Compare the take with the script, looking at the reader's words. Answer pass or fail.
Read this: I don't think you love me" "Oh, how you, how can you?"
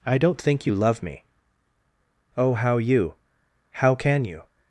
pass